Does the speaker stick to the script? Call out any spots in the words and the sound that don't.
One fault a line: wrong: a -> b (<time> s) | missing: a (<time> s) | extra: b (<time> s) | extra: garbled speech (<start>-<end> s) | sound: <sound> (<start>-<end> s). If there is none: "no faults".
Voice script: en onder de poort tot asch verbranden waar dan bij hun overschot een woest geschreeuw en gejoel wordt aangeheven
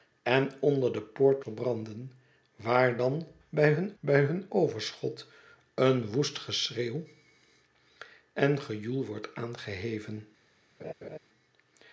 missing: tot asch (1.4 s)
extra: bij hun (4.0 s)
sound: laugh (10.8-11.2 s)